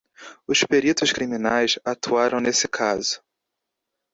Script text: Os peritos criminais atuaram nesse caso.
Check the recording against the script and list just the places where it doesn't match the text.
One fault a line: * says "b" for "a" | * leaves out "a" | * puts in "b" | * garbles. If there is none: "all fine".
all fine